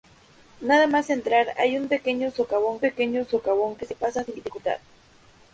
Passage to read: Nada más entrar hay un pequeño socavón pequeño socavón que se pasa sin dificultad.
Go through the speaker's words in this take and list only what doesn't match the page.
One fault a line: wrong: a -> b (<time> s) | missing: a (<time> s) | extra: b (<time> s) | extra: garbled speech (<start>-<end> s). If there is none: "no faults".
no faults